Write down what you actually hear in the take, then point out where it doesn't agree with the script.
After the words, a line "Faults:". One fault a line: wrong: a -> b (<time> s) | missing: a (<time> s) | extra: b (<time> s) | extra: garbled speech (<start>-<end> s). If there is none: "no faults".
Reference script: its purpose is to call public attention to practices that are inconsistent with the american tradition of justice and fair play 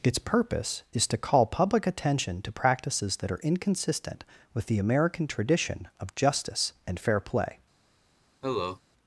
its purpose is to call public attention to practices that are inconsistent with the american tradition of justice and fair play
Faults:
no faults